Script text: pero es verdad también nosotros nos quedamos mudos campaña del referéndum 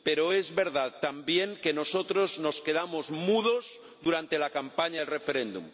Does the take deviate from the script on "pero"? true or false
false